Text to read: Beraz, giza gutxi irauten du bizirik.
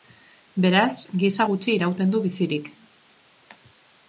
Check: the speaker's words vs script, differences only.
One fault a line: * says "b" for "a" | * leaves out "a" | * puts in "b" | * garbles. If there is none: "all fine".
all fine